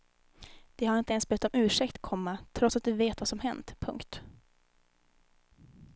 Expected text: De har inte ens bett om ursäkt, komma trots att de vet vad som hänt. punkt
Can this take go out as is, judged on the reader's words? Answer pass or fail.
pass